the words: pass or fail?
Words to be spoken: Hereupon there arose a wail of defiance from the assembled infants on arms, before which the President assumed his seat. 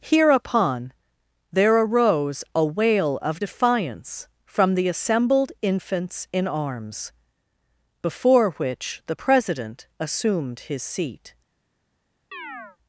fail